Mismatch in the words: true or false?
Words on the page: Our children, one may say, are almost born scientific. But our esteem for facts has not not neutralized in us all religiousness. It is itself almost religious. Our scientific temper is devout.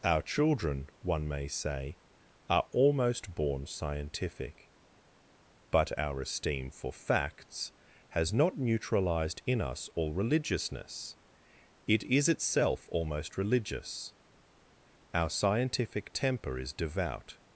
true